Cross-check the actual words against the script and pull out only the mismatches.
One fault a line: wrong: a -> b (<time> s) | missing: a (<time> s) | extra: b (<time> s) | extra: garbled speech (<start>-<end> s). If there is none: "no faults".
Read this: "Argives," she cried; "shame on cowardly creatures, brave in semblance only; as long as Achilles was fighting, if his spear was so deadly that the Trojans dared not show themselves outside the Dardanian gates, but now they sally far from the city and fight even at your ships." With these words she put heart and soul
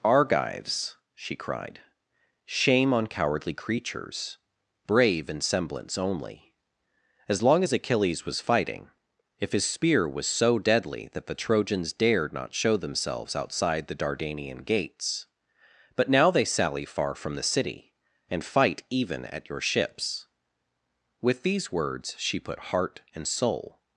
no faults